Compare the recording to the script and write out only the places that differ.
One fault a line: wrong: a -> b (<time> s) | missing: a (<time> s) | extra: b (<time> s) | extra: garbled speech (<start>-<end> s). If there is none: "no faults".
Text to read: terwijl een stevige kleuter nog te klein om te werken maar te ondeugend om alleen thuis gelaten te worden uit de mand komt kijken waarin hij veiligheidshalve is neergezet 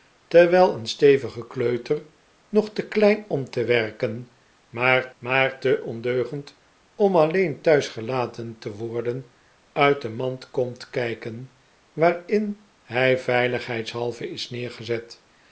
extra: maar (5.2 s)